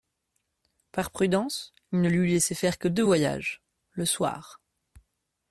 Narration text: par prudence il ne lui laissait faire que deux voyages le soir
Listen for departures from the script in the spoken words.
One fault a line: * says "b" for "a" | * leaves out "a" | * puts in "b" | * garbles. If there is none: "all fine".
all fine